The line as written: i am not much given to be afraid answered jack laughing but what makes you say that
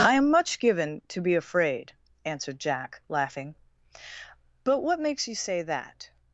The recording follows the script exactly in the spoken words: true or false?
false